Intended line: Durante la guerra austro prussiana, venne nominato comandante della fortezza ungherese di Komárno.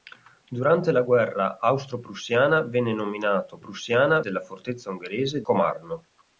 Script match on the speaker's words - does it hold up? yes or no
no